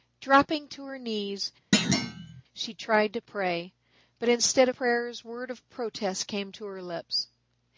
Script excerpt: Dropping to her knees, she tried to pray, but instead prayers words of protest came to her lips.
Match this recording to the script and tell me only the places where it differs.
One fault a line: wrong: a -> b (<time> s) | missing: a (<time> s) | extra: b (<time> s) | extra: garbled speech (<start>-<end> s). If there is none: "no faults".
no faults